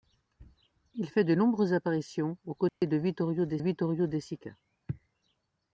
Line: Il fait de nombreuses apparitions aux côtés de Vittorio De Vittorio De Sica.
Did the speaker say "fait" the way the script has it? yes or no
yes